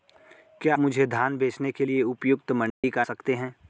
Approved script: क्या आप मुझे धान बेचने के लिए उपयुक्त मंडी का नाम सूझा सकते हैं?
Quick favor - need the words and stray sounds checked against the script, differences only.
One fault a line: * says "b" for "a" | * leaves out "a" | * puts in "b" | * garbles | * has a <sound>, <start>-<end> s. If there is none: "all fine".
* leaves out "आप"
* has a dropout, 2.7-2.8 s
* leaves out "नाम सूझा"